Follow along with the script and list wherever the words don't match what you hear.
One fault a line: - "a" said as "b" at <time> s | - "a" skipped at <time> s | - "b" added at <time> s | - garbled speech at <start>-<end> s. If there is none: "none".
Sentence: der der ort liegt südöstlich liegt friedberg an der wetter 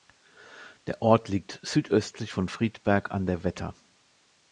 - "der" skipped at 1.0 s
- "liegt" said as "von" at 2.3 s